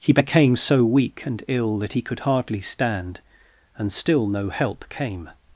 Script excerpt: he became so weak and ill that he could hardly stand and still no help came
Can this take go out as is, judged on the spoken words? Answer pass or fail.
pass